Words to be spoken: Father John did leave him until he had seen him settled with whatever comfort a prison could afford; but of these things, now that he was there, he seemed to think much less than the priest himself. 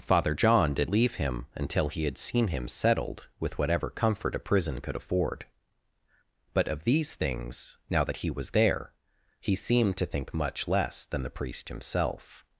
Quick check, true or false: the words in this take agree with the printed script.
true